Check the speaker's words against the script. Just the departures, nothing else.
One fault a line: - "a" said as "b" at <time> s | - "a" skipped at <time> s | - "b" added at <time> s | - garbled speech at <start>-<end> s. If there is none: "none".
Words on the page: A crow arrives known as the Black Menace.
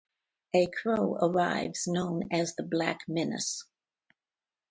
none